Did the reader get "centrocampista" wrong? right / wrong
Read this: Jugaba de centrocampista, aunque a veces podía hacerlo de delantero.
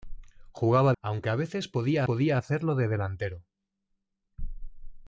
wrong